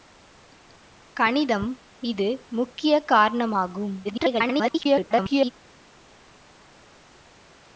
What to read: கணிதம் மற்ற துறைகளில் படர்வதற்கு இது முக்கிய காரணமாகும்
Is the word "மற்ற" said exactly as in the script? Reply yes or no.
no